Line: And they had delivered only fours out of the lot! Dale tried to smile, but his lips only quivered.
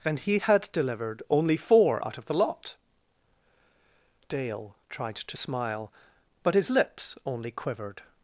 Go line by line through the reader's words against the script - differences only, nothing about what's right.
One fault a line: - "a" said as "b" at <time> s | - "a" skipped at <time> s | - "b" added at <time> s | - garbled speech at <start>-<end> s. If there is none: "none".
- "they" said as "he" at 0.2 s
- "fours" said as "four" at 1.6 s